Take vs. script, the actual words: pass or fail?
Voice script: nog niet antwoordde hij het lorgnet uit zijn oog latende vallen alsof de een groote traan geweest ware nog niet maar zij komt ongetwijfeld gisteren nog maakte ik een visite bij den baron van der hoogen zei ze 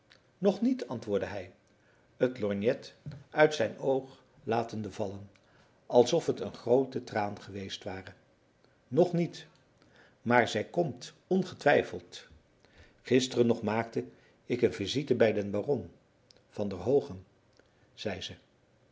fail